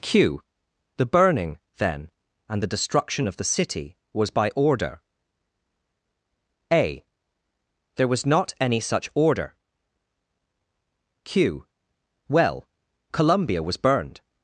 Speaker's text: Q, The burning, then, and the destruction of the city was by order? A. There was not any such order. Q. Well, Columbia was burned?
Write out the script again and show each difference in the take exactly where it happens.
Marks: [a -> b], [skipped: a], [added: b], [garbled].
Q, The burning, then, and the destruction of the city was by order? A. There was not any such order. Q. Well, Columbia was burned?